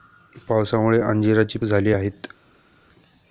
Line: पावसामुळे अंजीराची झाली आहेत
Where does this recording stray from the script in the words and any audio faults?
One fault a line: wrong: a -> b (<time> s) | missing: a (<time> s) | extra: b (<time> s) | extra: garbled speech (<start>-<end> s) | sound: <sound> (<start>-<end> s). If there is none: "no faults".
no faults